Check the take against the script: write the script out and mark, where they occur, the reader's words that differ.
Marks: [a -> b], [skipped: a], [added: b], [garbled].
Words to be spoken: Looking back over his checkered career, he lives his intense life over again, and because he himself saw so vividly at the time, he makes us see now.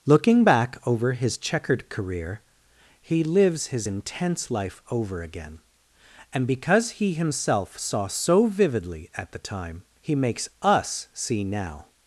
Looking back over his checkered career, he lives his intense life over again, and because he himself saw so vividly at the time, he makes us see now.